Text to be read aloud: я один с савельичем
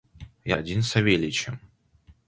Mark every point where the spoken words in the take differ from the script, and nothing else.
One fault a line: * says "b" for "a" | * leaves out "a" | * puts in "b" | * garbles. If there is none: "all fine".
all fine